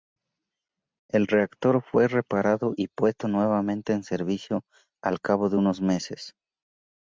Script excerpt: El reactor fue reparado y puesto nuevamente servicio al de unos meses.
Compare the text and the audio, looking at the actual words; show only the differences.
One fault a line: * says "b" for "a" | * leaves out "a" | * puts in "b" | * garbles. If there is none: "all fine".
* puts in "en"
* puts in "cabo"